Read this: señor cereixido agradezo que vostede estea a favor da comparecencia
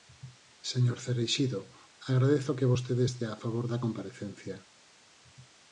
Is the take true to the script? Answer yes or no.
yes